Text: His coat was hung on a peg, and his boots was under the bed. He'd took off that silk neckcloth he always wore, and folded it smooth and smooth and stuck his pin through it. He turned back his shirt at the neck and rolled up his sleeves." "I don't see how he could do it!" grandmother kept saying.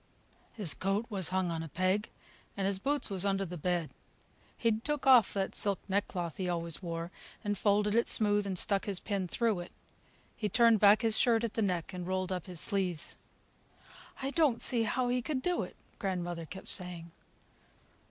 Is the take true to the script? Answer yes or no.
no